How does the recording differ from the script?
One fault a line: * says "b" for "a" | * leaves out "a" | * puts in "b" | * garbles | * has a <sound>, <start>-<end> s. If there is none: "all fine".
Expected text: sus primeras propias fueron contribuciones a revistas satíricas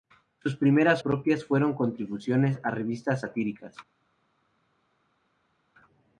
all fine